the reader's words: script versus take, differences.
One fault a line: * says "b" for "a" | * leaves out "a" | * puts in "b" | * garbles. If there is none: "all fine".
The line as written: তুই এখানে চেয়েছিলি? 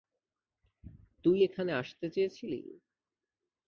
* puts in "আসতে"